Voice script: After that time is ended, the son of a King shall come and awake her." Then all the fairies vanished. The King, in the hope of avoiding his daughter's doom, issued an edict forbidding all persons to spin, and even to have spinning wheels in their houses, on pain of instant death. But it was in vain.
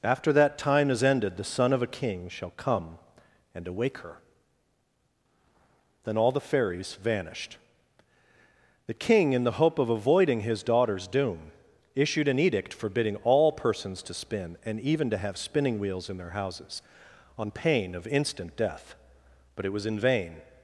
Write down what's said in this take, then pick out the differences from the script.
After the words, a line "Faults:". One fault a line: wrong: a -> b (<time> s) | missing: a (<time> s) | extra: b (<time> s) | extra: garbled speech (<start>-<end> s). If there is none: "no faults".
After that time is ended, the son of a King shall come and awake her." Then all the fairies vanished. The King, in the hope of avoiding his daughter's doom, issued an edict forbidding all persons to spin, and even to have spinning wheels in their houses, on pain of instant death. But it was in vain.
Faults:
no faults